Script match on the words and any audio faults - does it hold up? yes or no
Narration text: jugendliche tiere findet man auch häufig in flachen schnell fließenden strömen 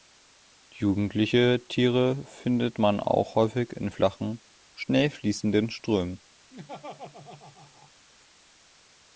no